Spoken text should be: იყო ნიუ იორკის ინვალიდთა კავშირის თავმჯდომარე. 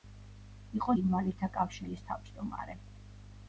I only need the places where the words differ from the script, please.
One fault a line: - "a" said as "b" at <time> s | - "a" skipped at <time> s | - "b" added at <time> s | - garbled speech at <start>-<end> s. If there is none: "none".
- "ნიუ იორკის" skipped at 0.9 s